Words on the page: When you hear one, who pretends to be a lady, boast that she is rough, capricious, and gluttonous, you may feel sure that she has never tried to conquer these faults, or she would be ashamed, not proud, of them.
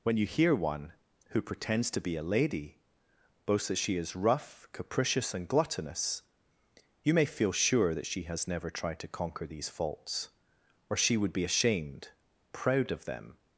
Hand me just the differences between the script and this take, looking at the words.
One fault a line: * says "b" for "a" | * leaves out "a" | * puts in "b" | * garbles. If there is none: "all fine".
* leaves out "not"